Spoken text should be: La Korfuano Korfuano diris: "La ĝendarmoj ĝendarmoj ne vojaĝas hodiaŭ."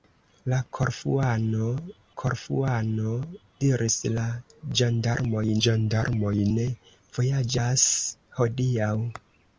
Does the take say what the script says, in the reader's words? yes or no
yes